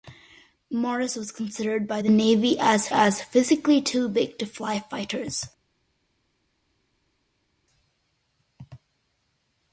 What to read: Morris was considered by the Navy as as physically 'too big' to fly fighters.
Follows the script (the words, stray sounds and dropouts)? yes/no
yes